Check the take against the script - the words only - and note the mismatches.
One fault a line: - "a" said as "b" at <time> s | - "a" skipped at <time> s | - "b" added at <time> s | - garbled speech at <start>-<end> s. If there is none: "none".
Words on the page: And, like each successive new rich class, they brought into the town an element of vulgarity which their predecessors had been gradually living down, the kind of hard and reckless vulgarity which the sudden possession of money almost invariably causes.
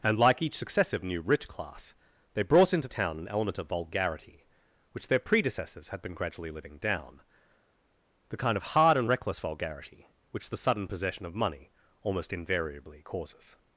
- "the" skipped at 2.9 s